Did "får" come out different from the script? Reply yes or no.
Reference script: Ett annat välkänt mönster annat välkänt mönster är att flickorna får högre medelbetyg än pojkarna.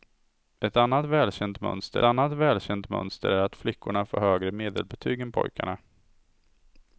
no